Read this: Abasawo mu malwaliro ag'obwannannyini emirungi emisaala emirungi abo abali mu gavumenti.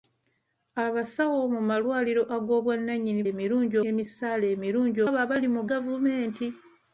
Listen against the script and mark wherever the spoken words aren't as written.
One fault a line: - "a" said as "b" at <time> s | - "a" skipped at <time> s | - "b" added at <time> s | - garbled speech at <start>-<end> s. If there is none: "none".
none